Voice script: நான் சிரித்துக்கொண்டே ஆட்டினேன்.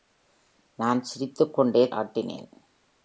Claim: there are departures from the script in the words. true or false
false